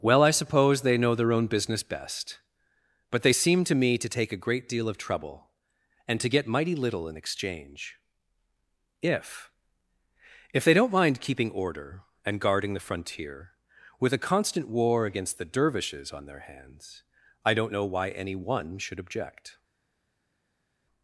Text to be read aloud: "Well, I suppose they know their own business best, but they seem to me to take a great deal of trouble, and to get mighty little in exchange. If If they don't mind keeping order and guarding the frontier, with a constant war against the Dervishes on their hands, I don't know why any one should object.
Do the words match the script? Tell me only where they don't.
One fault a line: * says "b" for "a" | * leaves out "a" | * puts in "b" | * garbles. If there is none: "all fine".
all fine